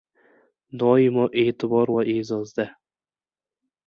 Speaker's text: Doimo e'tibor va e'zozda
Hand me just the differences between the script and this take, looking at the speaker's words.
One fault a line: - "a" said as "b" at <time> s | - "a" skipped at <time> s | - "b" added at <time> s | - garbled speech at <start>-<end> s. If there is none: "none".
none